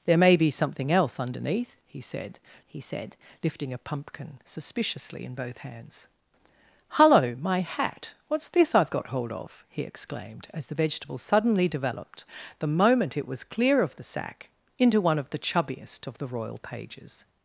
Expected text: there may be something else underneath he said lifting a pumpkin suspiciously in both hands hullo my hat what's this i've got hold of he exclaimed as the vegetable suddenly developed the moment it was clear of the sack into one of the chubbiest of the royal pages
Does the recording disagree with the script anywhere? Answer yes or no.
yes